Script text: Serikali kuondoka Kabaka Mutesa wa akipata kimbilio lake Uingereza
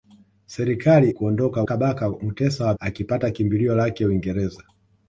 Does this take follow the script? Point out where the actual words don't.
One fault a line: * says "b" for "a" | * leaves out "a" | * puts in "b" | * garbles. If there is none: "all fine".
all fine